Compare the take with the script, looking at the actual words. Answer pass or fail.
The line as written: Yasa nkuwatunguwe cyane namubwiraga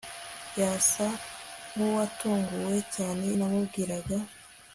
pass